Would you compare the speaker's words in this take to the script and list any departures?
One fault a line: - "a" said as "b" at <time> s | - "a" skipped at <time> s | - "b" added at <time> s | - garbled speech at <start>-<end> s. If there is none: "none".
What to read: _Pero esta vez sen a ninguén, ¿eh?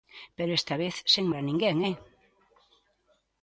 none